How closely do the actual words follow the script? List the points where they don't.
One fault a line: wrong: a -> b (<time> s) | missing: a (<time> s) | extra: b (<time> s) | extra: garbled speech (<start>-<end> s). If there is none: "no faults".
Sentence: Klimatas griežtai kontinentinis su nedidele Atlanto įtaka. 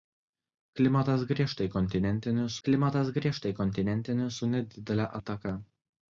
extra: klimatas griežtai kontinentinis (2.7 s)
missing: Atlanto (5.1 s)